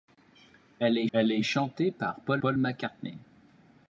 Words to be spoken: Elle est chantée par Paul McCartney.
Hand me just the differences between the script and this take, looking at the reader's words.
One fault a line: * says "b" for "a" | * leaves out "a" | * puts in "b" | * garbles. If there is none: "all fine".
* puts in "elle est"
* puts in "Paul"